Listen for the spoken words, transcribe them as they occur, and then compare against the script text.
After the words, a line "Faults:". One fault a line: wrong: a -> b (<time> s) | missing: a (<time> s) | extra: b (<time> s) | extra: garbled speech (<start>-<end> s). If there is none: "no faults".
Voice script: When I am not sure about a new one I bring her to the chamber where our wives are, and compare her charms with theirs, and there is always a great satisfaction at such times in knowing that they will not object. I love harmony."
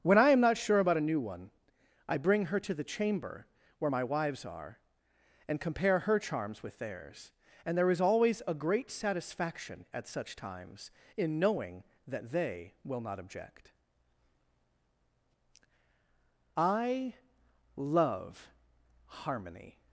When I am not sure about a new one I bring her to the chamber where my wives are, and compare her charms with theirs, and there is always a great satisfaction at such times in knowing that they will not object. I love harmony."
Faults:
wrong: our -> my (3.9 s)